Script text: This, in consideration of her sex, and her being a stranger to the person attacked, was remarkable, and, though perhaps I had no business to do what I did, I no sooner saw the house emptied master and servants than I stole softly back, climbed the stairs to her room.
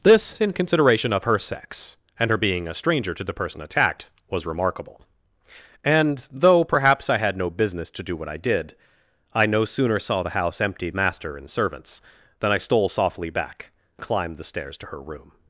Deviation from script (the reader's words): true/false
false